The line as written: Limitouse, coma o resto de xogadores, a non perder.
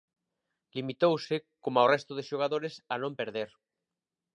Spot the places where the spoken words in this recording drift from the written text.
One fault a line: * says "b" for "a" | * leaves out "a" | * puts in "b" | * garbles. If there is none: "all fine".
all fine